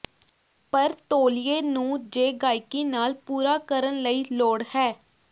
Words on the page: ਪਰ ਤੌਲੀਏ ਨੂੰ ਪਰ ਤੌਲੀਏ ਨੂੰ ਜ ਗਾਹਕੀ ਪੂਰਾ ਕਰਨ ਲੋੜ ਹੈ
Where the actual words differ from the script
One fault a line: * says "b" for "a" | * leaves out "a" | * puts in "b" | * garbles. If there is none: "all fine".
* leaves out "ਪਰ ਤੌਲੀਏ ਨੂੰ"
* puts in "ਨਾਲ"
* puts in "ਲਈ"